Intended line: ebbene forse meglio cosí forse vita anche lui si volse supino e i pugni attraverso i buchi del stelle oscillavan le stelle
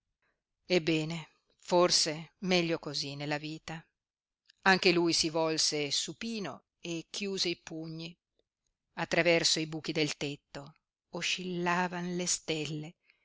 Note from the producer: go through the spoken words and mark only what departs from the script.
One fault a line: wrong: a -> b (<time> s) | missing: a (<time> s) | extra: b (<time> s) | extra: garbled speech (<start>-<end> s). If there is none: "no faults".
wrong: forse -> nella (3.1 s)
extra: chiuse (7.1 s)
wrong: stelle -> tetto (10.2 s)